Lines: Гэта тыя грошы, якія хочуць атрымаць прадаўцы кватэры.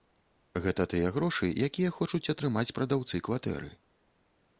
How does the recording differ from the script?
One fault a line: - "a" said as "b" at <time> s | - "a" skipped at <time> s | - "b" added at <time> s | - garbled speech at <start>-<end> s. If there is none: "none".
none